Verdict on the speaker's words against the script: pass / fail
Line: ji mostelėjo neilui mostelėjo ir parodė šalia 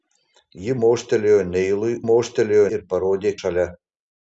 pass